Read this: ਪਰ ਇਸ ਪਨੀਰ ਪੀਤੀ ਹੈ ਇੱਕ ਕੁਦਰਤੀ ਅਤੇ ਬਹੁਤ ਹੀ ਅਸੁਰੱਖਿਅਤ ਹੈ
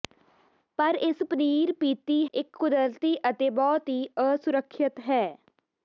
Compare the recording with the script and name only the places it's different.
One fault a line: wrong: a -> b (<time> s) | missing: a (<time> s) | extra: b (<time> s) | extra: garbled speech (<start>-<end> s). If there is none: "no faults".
missing: ਹੈ (2.2 s)